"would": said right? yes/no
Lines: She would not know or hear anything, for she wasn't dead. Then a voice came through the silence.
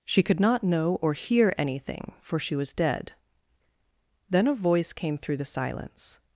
no